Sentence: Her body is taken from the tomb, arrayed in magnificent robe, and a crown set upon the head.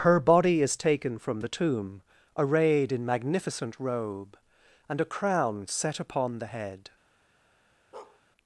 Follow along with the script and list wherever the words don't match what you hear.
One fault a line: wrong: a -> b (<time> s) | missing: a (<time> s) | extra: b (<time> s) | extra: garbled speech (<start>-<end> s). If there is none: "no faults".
no faults